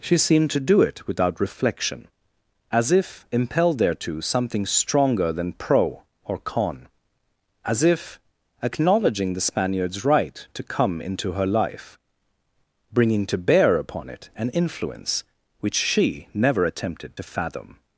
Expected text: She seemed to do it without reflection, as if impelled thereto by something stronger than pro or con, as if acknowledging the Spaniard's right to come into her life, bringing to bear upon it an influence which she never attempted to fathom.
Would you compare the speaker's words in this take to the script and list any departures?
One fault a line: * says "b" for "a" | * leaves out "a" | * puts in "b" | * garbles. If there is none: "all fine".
* leaves out "by"